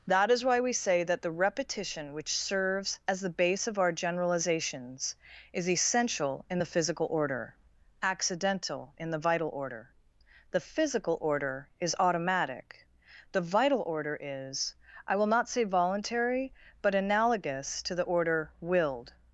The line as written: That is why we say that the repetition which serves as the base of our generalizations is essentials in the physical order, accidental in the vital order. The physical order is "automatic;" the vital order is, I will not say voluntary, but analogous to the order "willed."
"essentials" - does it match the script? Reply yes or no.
no